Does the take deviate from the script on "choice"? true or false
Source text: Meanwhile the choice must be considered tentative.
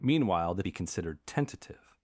true